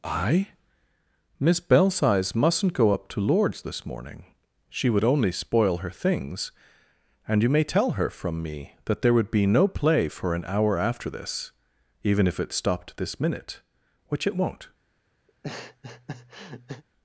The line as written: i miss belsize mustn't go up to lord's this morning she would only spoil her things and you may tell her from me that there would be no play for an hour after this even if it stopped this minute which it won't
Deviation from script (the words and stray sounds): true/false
true